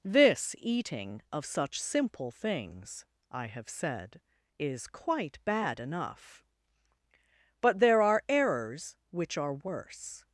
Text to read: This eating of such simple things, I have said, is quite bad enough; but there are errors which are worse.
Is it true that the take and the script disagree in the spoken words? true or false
false